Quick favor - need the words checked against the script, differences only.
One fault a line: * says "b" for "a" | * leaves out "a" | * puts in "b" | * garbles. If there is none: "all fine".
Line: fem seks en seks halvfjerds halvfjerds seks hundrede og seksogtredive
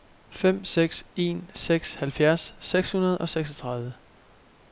* leaves out "halvfjerds"